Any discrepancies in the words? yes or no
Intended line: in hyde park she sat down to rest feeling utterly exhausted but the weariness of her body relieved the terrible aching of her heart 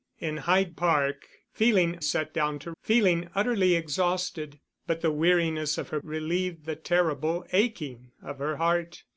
yes